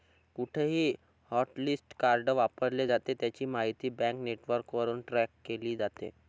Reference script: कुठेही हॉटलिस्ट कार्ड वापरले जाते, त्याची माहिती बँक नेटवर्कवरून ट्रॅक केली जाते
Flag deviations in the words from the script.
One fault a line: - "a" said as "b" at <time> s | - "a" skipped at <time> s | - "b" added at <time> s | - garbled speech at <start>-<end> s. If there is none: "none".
none